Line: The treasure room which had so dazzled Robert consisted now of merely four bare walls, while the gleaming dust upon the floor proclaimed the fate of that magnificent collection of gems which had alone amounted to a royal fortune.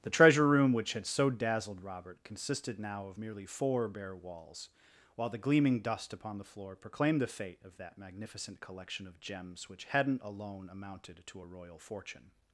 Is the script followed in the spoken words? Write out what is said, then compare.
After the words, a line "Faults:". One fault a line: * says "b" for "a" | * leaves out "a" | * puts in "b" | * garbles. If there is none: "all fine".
The treasure room which had so dazzled Robert consisted now of merely four bare walls, while the gleaming dust upon the floor proclaimed the fate of that magnificent collection of gems which hadn't alone amounted to a royal fortune.
Faults:
* says "hadn't" for "had"